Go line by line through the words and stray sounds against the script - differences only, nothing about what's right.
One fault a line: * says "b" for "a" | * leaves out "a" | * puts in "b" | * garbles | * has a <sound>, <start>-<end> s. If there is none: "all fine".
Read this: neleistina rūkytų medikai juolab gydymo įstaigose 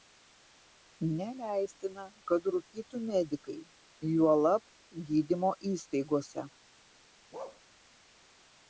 * puts in "kad"
* has a bark, 7.3-7.6 s